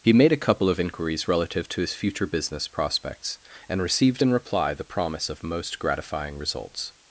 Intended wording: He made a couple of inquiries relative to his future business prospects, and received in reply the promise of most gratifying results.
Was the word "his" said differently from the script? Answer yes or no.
no